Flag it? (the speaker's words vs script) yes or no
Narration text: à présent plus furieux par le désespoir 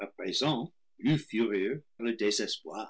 yes